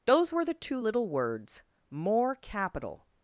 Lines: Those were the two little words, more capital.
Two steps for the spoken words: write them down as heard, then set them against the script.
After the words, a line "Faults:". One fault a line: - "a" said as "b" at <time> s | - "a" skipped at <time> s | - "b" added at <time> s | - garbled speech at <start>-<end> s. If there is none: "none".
Those were the two little words, more capital.
Faults:
none